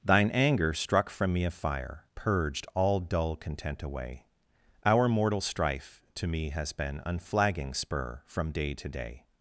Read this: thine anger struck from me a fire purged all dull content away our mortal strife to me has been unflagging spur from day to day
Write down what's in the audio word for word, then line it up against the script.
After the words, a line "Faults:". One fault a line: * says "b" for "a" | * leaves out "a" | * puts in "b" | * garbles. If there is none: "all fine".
thine anger struck from me a fire purged all dull content away our mortal strife to me has been unflagging spur from day to day
Faults:
all fine